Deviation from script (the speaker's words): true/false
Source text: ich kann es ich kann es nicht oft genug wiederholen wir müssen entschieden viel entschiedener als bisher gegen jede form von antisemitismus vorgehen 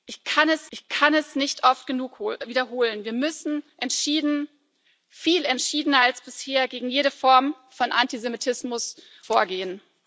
false